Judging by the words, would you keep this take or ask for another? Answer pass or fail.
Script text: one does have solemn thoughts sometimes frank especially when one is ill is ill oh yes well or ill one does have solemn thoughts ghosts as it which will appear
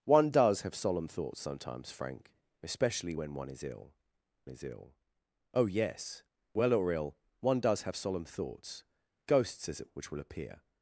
pass